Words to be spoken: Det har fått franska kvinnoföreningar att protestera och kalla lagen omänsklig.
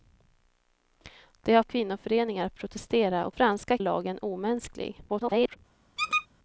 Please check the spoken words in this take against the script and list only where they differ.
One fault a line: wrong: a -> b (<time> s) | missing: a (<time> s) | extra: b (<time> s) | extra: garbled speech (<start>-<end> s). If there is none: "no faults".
missing: fått franska (1.6 s)
wrong: kalla -> franska (3.3 s)
extra: garbled speech (5.1-5.6 s)